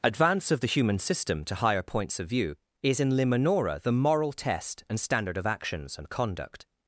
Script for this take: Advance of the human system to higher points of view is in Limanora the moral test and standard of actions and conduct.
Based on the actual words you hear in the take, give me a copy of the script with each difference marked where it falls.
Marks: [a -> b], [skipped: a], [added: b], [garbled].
Advance of the human system to higher points of view is in Limanora the moral test and standard of actions and conduct.